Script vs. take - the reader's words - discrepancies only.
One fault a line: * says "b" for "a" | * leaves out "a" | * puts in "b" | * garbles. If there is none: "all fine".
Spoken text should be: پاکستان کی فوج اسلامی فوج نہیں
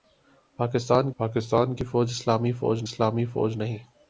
* puts in "پاکستان"
* puts in "اسلامی فوج"